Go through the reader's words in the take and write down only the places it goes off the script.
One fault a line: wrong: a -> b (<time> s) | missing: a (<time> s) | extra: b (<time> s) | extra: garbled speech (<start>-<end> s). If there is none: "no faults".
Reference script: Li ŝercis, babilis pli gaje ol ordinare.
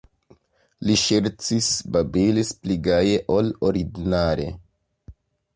no faults